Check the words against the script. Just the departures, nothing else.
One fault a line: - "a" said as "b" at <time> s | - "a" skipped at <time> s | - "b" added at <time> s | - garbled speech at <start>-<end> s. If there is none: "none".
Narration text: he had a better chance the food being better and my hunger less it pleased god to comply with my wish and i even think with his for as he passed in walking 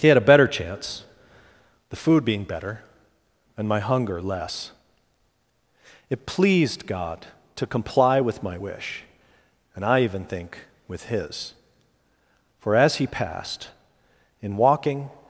none